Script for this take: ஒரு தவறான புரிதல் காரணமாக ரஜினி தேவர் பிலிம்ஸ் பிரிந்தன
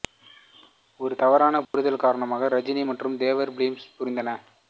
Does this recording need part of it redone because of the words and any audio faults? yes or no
yes